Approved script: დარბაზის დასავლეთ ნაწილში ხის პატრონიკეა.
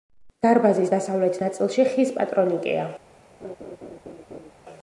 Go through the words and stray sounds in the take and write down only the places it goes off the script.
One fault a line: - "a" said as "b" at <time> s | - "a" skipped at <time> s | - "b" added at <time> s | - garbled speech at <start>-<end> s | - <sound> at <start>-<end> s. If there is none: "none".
- laugh at 3.4-4.5 s